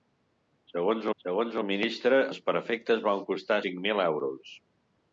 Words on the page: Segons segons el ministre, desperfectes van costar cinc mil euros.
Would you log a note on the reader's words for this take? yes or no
no